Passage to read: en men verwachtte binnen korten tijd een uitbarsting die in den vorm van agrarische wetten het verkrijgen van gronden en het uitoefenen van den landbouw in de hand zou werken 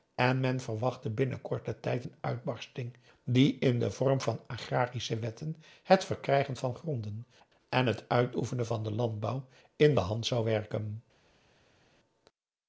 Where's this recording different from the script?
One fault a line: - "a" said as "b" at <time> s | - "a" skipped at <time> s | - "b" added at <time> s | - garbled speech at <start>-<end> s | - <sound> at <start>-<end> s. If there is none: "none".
none